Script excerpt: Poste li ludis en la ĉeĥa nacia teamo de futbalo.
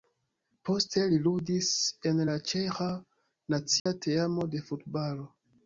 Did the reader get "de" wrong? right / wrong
right